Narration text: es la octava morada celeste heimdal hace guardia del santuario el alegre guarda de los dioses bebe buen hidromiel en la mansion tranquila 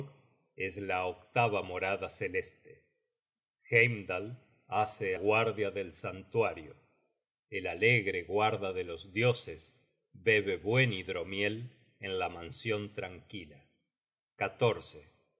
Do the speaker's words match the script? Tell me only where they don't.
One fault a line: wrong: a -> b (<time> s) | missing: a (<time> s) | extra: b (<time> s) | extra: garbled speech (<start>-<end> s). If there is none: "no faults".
no faults